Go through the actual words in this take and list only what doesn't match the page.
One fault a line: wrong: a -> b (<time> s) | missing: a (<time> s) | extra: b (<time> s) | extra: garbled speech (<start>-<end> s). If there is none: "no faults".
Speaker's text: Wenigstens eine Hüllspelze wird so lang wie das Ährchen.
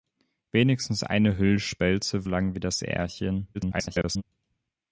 missing: wird so (2.3 s)
extra: garbled speech (3.5-4.2 s)